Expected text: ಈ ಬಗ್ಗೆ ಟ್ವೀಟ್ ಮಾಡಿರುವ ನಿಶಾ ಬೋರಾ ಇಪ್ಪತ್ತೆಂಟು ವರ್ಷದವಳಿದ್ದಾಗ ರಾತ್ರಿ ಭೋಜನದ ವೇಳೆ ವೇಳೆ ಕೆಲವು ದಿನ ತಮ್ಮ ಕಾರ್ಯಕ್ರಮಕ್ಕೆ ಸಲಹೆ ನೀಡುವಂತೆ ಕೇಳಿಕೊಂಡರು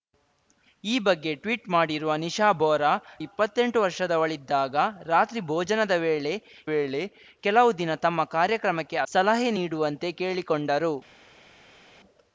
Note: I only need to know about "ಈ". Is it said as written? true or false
true